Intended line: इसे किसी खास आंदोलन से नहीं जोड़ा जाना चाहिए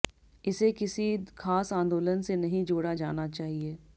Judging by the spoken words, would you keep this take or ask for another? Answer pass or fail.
pass